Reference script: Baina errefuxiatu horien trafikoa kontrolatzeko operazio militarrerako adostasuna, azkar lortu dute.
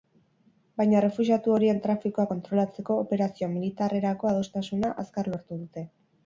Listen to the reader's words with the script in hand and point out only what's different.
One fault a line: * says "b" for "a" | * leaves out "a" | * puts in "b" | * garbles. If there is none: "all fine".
all fine